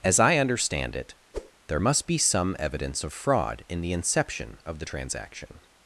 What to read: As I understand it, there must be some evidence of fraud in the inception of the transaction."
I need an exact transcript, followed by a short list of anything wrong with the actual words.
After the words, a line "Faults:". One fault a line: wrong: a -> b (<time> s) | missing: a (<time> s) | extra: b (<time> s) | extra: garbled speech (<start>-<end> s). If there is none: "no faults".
As I understand it, there must be some evidence of fraud in the inception of the transaction."
Faults:
no faults